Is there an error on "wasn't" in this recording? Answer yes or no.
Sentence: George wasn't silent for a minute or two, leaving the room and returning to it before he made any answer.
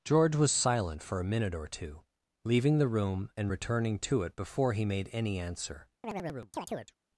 yes